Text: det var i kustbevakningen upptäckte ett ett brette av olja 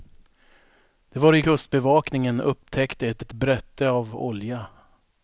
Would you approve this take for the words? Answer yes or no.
yes